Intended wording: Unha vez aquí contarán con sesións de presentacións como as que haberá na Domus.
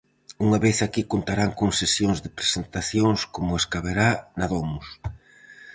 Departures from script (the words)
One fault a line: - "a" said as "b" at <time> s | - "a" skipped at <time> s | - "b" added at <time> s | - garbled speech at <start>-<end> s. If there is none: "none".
none